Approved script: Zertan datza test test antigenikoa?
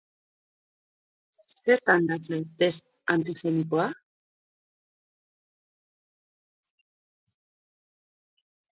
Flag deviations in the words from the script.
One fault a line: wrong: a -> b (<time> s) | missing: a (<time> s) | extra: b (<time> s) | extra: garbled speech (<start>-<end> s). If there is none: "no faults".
missing: test (2.9 s)